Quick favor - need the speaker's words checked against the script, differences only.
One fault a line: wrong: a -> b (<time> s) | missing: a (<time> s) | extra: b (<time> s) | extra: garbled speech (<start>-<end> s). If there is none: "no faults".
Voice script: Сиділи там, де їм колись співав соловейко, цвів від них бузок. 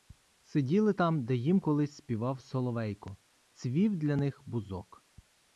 wrong: від -> для (4.0 s)